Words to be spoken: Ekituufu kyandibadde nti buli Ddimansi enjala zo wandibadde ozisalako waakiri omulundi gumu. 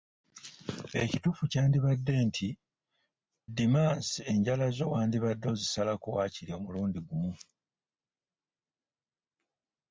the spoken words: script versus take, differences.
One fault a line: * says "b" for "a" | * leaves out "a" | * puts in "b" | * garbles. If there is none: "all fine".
* leaves out "buli"